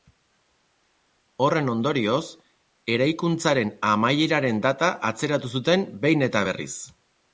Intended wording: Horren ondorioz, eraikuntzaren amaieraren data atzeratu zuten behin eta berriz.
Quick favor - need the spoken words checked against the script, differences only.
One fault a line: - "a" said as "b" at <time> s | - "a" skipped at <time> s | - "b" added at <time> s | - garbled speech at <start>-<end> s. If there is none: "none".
none